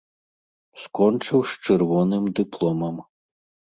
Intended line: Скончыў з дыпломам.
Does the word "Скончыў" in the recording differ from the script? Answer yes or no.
no